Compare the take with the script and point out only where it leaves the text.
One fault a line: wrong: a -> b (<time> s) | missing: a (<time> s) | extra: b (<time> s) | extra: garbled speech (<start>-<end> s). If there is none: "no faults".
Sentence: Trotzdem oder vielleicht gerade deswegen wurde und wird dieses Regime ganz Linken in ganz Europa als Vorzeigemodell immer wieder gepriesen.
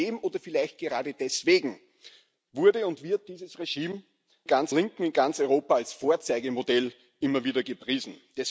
no faults